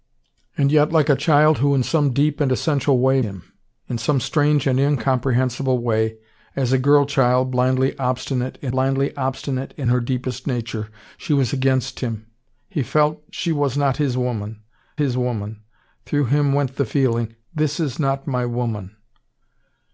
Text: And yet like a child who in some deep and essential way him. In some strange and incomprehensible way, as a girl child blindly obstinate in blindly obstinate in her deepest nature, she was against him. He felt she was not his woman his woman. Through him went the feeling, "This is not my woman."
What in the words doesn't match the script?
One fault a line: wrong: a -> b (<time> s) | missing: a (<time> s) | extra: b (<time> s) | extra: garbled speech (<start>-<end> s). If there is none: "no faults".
no faults